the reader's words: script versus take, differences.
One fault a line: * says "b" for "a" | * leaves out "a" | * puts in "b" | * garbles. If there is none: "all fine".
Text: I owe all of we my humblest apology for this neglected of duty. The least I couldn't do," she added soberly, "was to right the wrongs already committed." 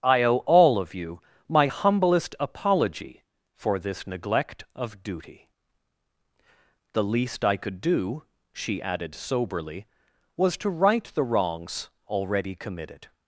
* says "you" for "we"
* says "neglect" for "neglected"
* says "could" for "couldn't"